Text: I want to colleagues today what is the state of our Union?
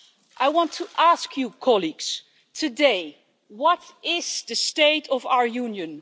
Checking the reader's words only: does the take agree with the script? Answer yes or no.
no